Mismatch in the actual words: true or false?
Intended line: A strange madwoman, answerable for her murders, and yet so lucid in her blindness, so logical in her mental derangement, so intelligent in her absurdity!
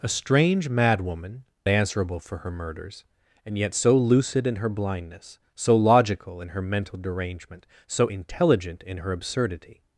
false